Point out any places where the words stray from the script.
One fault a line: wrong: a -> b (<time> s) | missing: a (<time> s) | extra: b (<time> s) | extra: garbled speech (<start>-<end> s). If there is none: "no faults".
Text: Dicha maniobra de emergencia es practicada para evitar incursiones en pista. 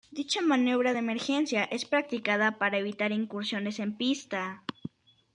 no faults